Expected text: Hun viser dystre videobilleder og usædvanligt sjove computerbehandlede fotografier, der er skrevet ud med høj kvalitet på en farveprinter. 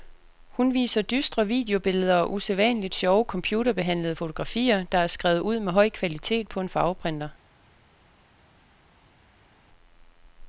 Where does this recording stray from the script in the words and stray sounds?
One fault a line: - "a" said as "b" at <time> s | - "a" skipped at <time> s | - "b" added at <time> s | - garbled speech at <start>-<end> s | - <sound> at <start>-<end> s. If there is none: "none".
none